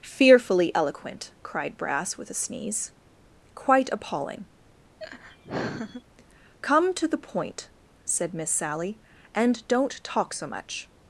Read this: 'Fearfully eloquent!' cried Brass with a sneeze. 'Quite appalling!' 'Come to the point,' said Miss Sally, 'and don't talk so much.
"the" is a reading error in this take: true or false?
false